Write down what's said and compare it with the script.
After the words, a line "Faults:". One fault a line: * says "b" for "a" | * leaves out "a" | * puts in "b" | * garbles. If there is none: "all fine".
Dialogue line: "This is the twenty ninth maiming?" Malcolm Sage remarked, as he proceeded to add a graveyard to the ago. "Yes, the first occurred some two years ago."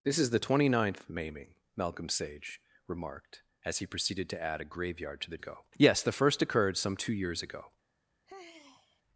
"This is the twenty ninth maiming?" Malcolm Sage remarked, as he proceeded to add a graveyard to the ago. "Yes, the first occurred some two years ago."
Faults:
all fine